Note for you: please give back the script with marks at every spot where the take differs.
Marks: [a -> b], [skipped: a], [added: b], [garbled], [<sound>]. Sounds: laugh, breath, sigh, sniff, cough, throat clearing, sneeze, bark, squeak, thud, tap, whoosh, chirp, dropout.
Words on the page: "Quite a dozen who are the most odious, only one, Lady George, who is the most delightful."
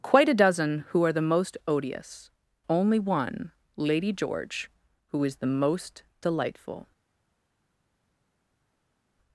"Quite a dozen who are the most odious, only one, Lady George, who is the most delightful."